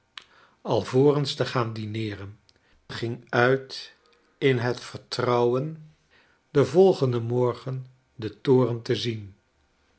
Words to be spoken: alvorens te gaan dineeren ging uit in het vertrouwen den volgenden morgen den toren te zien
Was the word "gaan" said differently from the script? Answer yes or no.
no